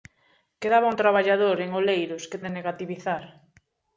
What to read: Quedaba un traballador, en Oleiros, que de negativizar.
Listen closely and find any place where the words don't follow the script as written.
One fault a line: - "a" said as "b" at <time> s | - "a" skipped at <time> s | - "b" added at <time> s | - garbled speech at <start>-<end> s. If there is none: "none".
none